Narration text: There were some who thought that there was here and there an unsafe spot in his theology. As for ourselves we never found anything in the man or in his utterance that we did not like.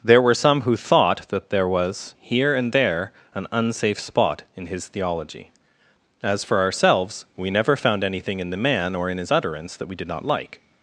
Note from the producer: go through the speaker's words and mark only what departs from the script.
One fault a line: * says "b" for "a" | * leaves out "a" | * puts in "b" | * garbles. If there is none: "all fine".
all fine